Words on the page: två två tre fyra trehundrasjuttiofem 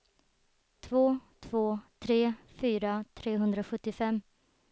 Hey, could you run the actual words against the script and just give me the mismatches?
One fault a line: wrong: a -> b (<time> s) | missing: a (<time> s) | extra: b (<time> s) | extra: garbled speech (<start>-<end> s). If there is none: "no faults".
no faults